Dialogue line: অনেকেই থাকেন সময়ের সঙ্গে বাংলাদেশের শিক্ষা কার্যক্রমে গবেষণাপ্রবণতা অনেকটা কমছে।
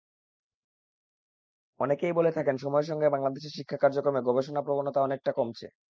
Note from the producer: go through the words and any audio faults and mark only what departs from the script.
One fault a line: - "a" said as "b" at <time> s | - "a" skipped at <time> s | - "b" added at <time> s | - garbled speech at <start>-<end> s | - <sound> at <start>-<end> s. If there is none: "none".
- "বলে" added at 2.1 s